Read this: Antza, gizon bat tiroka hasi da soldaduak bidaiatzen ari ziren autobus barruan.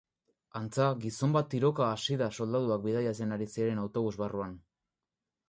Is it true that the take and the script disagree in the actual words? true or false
false